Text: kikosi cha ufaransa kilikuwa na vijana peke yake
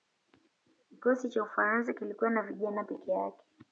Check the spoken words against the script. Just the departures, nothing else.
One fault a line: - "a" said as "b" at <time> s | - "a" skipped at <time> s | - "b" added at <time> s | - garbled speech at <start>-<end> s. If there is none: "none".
none